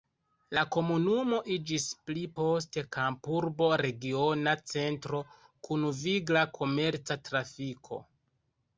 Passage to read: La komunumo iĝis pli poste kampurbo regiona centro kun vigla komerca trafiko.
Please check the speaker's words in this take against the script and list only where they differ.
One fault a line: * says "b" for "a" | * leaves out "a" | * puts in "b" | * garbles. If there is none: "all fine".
all fine